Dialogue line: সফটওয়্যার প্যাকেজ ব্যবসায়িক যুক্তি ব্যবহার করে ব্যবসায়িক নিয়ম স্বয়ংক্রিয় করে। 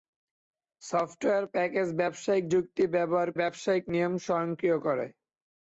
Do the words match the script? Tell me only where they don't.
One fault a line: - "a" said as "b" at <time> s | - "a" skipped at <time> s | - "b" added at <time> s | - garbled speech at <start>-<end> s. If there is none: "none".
- "করে" skipped at 3.3 s